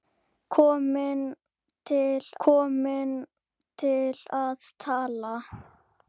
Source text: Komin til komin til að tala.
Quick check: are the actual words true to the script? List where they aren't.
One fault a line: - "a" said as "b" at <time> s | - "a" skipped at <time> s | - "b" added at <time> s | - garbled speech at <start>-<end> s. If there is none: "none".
none